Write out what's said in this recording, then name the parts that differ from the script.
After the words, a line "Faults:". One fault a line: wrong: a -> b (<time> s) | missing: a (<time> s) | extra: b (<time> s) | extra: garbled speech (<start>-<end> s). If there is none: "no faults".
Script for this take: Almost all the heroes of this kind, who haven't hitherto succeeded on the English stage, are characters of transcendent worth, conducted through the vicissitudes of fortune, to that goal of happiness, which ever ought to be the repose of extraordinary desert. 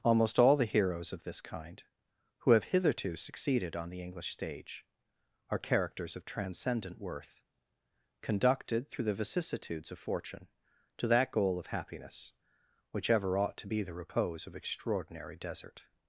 Almost all the heroes of this kind, who have hitherto succeeded on the English stage, are characters of transcendent worth, conducted through the vicissitudes of fortune, to that goal of happiness, which ever ought to be the repose of extraordinary desert.
Faults:
wrong: haven't -> have (2.5 s)